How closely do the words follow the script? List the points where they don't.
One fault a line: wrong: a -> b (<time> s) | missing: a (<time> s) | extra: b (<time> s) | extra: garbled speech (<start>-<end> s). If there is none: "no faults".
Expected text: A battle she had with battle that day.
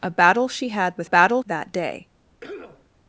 no faults